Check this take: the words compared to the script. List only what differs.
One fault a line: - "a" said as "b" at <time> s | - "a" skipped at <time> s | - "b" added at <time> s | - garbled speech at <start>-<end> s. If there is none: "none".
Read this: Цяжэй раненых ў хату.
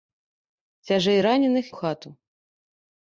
none